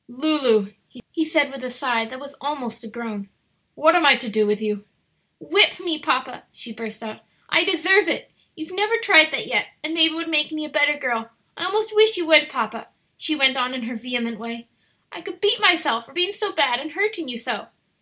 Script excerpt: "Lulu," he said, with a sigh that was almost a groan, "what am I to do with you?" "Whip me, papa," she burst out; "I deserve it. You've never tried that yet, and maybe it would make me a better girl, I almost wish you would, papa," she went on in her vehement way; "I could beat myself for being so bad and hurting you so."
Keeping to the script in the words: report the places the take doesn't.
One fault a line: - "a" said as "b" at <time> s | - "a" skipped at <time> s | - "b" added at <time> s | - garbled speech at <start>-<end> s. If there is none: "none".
none